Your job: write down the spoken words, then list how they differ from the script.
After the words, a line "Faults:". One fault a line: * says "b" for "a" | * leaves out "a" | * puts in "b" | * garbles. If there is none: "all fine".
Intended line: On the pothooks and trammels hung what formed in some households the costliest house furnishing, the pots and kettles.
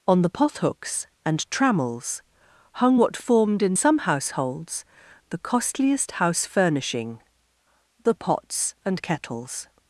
On the pothooks and trammels hung what formed in some households the costliest house furnishing, the pots and kettles.
Faults:
all fine